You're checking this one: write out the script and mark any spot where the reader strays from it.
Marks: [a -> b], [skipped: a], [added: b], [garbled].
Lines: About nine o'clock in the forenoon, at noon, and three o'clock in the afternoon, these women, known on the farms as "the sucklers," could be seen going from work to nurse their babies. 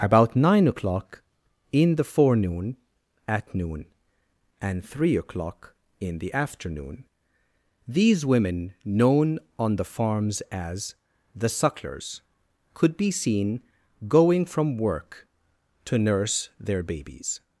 About nine o'clock in the forenoon, at noon, and three o'clock in the afternoon, these women, known on the farms as "the sucklers," could be seen going from work to nurse their babies.